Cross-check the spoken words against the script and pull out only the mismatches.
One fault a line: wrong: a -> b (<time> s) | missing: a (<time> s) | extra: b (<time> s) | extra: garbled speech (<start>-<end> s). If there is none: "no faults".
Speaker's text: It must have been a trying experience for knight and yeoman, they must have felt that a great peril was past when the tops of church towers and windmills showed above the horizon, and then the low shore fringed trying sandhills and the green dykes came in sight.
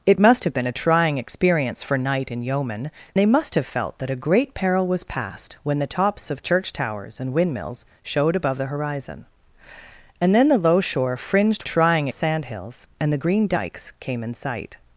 no faults